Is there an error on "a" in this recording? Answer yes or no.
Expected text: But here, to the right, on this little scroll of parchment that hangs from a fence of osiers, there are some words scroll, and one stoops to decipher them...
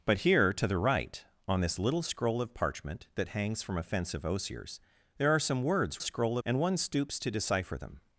no